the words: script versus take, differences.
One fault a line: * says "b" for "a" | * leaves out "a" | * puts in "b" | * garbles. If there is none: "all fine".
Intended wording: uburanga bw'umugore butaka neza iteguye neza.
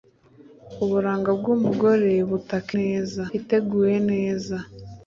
all fine